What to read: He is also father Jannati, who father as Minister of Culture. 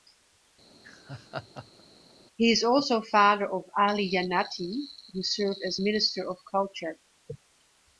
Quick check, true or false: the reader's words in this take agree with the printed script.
false